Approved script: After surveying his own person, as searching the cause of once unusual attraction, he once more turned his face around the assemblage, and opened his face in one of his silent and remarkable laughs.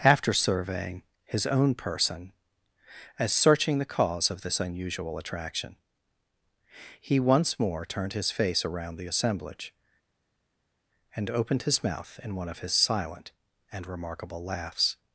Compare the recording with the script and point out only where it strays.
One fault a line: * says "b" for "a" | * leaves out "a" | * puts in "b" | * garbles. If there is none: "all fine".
* says "this" for "once"
* says "mouth" for "face"